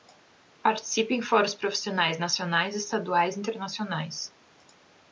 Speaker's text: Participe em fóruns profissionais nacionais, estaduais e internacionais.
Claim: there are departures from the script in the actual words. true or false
false